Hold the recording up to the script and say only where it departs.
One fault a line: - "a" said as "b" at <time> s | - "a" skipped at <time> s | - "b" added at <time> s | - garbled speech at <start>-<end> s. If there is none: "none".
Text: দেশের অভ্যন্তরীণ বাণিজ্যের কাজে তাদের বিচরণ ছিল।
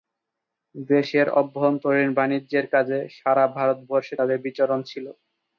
- "সারা ভারতবর্ষে" added at 3.2 s